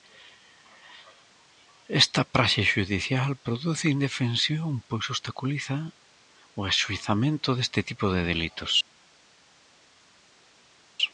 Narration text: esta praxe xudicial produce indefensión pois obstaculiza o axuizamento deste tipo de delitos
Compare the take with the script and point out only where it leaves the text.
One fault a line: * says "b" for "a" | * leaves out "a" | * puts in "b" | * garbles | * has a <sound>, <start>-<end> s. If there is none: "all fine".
all fine